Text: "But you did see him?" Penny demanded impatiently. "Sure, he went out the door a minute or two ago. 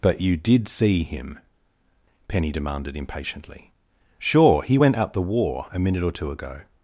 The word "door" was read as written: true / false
false